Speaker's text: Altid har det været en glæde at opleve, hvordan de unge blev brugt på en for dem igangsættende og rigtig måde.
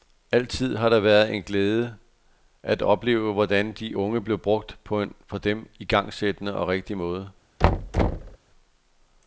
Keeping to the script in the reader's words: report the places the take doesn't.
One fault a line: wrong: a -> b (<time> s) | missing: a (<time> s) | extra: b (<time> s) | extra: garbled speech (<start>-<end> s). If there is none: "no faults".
no faults